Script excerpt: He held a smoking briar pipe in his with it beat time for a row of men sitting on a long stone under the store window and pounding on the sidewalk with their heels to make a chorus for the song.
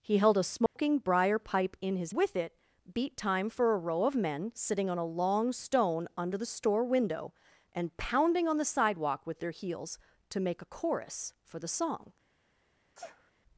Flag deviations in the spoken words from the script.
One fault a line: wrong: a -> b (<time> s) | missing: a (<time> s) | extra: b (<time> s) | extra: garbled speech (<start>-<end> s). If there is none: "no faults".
no faults